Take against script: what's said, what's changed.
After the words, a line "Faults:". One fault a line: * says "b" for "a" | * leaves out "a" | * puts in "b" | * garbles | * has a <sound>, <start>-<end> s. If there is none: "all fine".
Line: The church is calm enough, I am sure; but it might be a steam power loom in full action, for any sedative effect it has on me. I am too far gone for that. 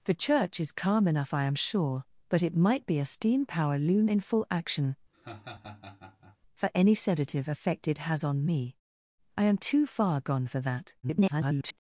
The church is calm enough, I am sure; but it might be a steam power loom in full action, for any sedative effect it has on me. I am too far gone for that. [garbled]
Faults:
* has a laugh, 5.1-6.4 s
* garbles